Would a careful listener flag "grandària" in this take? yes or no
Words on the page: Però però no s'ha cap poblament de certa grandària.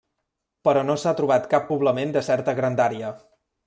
no